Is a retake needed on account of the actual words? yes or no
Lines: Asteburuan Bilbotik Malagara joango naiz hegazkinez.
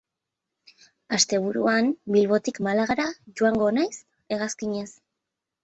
no